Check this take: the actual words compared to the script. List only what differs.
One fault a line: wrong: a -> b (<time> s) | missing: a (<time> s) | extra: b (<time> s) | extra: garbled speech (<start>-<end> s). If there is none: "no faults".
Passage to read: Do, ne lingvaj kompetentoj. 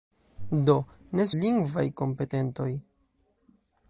no faults